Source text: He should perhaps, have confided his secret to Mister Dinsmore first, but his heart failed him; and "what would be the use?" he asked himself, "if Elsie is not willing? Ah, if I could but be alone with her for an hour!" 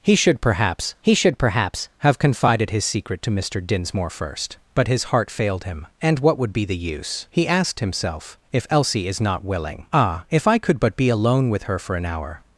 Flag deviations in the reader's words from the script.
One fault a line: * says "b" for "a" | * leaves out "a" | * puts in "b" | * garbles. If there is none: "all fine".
* puts in "he should perhaps"